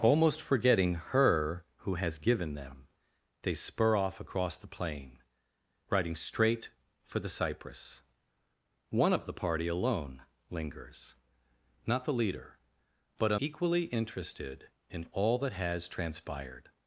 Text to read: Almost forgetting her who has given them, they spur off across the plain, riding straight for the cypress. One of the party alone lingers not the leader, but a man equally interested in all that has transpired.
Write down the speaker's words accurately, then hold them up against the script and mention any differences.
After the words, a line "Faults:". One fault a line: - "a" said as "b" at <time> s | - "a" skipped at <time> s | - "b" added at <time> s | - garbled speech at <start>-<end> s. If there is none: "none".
Almost forgetting her who has given them, they spur off across the plain, riding straight for the cypress. One of the party alone lingers not the leader, but a equally interested in all that has transpired.
Faults:
- "man" skipped at 13.4 s